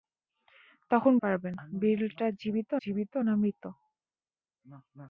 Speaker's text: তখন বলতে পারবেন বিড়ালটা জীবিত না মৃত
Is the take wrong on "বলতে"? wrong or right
wrong